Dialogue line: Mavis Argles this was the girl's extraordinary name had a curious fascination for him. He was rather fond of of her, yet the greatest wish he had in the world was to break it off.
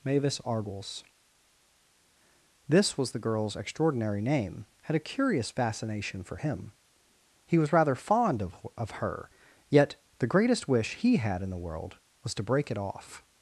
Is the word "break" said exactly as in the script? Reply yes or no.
yes